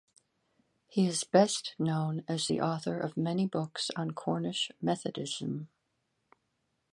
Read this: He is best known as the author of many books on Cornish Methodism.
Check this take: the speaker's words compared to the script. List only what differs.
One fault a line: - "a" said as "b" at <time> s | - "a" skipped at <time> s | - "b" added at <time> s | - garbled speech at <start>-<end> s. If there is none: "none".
none